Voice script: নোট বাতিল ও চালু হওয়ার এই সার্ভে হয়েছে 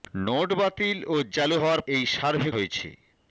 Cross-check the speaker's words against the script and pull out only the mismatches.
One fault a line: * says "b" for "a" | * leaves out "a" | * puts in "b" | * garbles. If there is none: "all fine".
all fine